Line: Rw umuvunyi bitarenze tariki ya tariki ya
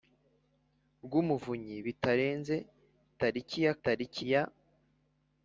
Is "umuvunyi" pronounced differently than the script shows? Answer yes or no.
no